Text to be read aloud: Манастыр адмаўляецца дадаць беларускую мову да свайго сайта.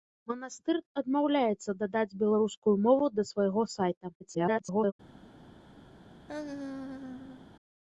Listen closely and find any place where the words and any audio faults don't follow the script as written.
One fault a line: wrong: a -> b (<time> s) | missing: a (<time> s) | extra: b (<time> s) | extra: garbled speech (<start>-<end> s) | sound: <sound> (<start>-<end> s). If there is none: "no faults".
extra: garbled speech (4.2-4.9 s)
sound: laugh (6.3-7.5 s)